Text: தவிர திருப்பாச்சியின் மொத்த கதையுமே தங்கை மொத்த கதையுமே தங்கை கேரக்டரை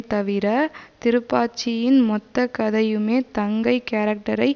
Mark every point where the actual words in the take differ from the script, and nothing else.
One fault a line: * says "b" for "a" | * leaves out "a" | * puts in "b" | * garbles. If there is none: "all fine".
* leaves out "மொத்த கதையுமே தங்கை"